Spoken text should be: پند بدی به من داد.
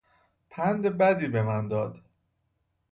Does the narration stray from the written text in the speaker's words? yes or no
no